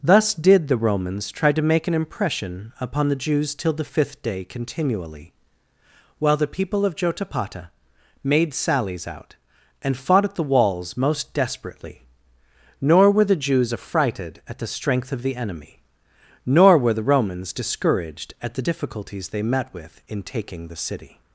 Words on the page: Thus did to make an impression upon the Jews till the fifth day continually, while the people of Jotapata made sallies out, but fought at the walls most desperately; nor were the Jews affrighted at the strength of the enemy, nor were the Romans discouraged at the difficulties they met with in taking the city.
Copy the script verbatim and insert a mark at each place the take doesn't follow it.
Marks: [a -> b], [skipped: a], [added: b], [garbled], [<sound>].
Thus did [added: the Romans try] to make an impression upon the Jews till the fifth day continually, while the people of Jotapata made sallies out, [but -> and] fought at the walls most desperately; nor were the Jews affrighted at the strength of the enemy, nor were the Romans discouraged at the difficulties they met with in taking the city.